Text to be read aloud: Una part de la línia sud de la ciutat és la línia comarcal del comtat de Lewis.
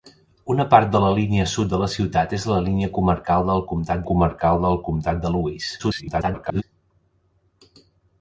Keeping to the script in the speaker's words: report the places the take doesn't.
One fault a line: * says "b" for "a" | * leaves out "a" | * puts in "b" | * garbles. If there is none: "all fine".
* puts in "comarcal del comtat"
* garbles